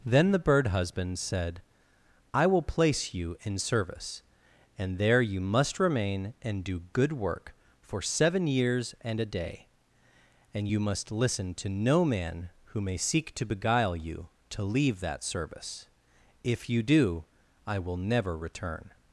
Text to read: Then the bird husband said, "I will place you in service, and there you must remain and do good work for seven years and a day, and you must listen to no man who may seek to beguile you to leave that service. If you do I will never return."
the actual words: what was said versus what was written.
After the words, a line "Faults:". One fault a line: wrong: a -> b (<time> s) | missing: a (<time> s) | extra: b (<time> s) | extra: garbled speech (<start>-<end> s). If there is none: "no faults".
Then the bird husband said, "I will place you in service, and there you must remain and do good work for seven years and a day, and you must listen to no man who may seek to beguile you to leave that service. If you do I will never return."
Faults:
no faults